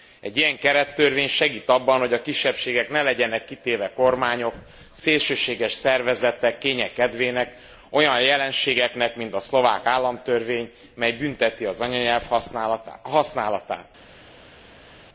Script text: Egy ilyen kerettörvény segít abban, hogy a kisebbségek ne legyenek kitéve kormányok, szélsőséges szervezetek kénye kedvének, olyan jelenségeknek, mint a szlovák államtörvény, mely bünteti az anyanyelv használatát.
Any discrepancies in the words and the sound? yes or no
no